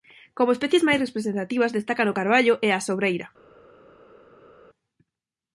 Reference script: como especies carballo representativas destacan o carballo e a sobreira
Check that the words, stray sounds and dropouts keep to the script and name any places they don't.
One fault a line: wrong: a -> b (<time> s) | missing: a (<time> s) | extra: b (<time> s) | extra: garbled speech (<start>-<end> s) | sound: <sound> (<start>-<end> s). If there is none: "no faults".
wrong: carballo -> máis (0.9 s)